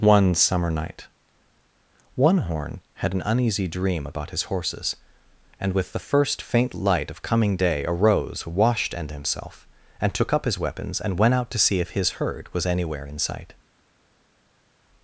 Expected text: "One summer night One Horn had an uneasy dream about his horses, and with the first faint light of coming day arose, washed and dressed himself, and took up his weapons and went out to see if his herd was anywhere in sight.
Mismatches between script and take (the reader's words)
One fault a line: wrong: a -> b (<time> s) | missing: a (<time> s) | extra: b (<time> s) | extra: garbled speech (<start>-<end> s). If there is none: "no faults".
missing: dressed (9.1 s)